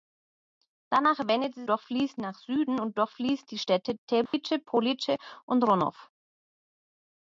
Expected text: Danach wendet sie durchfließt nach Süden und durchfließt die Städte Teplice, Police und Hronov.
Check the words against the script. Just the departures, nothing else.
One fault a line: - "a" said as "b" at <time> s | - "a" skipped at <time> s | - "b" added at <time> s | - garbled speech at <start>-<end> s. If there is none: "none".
none